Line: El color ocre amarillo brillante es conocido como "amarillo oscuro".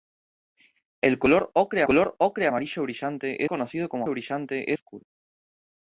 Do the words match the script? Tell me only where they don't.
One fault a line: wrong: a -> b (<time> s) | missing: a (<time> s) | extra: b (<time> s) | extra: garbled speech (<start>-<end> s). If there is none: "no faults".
extra: color ocre (1.8 s)
missing: es (3.4 s)
wrong: amarillo -> brillante (4.1 s)